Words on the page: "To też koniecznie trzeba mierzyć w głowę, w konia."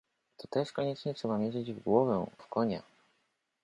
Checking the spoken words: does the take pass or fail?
pass